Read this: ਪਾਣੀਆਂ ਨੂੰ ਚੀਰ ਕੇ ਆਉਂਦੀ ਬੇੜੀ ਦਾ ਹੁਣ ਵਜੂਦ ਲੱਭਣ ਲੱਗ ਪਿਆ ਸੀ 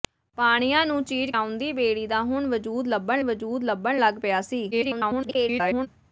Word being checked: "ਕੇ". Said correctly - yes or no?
no